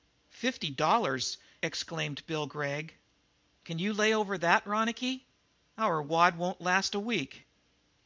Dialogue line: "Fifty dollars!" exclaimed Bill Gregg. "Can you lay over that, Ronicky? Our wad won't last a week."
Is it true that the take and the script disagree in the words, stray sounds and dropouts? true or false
false